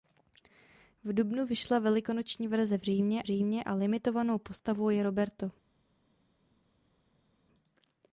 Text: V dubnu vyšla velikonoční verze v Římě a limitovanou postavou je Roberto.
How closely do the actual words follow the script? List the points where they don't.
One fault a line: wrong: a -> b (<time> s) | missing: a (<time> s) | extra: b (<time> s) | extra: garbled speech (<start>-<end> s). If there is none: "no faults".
extra: Římě (3.2 s)